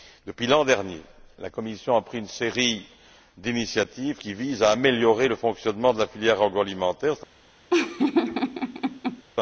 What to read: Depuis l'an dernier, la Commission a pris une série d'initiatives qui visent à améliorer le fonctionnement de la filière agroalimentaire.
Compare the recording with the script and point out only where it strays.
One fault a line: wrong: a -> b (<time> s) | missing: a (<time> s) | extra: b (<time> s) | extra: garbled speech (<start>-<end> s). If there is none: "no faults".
no faults